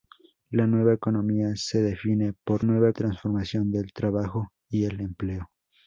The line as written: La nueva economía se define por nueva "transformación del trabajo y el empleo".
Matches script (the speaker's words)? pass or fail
pass